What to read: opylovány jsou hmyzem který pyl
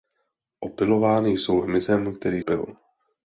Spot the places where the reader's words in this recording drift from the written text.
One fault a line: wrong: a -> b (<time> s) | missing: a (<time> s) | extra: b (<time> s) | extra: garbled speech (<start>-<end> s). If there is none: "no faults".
no faults